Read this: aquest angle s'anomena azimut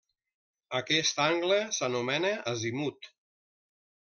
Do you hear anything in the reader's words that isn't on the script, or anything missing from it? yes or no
no